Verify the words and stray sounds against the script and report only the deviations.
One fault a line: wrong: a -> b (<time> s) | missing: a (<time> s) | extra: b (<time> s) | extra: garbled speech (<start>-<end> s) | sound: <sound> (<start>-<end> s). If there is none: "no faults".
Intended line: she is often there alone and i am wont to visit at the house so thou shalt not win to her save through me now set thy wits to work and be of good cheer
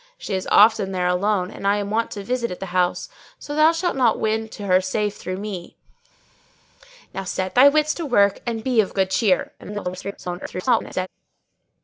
extra: garbled speech (9.6-11.1 s)